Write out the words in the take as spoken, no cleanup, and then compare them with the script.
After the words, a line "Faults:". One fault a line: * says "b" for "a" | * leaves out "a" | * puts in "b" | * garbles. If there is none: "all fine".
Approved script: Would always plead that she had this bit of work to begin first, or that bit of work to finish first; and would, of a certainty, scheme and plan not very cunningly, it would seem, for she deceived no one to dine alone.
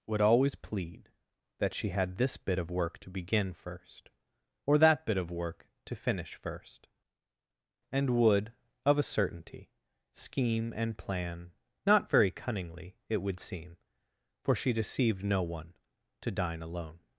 Would always plead that she had this bit of work to begin first, or that bit of work to finish first; and would, of a certainty, scheme and plan not very cunningly, it would seem, for she deceived no one to dine alone.
Faults:
all fine